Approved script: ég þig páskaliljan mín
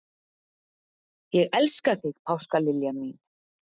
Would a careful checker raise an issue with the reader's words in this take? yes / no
yes